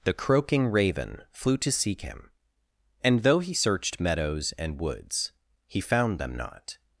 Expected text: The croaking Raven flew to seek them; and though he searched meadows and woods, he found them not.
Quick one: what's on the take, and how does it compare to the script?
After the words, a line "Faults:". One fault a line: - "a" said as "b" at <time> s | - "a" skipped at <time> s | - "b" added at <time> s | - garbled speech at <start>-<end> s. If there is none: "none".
The croaking Raven flew to seek him; and though he searched meadows and woods, he found them not.
Faults:
- "them" said as "him" at 2.0 s